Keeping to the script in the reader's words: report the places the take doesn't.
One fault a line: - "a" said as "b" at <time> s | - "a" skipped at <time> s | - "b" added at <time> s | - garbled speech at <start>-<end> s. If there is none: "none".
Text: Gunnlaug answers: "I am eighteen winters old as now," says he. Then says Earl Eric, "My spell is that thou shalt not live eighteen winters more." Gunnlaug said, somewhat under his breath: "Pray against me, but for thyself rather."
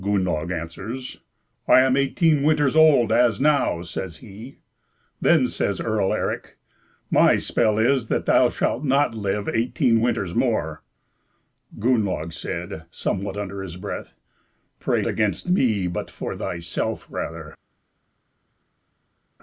none